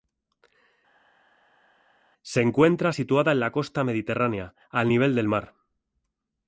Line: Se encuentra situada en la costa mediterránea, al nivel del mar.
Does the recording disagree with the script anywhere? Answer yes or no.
no